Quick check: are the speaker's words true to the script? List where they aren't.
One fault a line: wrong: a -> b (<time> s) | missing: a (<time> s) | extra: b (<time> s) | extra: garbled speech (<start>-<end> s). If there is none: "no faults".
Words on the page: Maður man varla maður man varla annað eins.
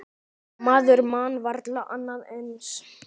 missing: maður man varla (1.8 s)